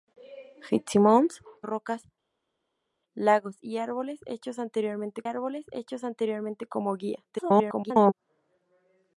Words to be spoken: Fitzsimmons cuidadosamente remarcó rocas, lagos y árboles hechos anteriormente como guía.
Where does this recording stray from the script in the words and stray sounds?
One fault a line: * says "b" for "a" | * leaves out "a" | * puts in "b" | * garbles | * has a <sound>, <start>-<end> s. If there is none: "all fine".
* leaves out "cuidadosamente remarcó"
* puts in "árboles hechos anteriormente"
* garbles